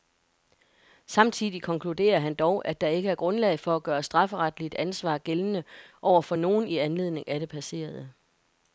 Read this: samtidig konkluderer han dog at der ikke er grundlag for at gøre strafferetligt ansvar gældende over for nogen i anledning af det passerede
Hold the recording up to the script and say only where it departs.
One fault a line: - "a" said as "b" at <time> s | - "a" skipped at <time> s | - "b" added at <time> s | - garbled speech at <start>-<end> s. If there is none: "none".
none